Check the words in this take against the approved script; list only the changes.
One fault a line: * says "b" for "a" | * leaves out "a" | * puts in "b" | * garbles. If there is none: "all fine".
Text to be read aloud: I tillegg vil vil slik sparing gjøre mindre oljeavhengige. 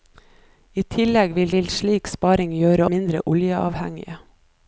all fine